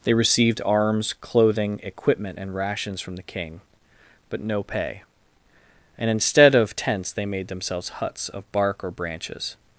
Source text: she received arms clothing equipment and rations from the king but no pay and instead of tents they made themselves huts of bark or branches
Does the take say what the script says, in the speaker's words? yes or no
no